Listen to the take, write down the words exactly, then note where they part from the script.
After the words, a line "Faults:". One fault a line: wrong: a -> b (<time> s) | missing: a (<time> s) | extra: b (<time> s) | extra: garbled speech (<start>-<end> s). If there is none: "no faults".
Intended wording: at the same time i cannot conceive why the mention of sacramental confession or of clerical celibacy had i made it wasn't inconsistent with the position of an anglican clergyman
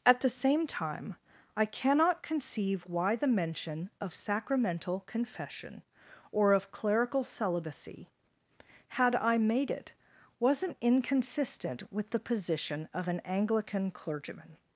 at the same time i cannot conceive why the mention of sacramental confession or of clerical celibacy had i made it wasn't inconsistent with the position of an anglican clergyman
Faults:
no faults